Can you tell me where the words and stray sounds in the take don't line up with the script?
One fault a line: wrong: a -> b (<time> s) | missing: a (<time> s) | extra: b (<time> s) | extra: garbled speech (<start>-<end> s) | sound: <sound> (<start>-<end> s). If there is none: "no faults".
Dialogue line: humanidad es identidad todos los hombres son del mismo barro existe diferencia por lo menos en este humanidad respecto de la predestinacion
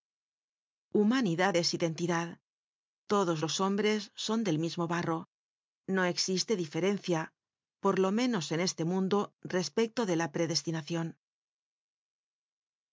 extra: no (5.9 s)
wrong: humanidad -> mundo (8.8 s)